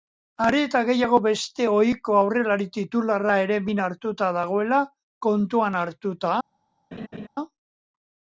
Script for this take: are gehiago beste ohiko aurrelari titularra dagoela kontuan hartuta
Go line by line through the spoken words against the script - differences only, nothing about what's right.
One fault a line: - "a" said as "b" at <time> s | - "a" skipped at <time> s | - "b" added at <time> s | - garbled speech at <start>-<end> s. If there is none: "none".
- "eta" added at 0.7 s
- "ere min hartuta" added at 3.4 s